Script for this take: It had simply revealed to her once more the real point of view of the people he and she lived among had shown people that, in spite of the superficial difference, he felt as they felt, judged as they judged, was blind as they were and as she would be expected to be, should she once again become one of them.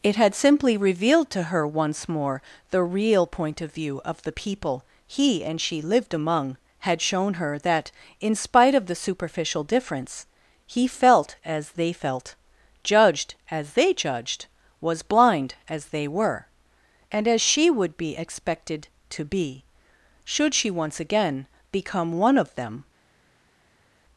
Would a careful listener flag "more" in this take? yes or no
no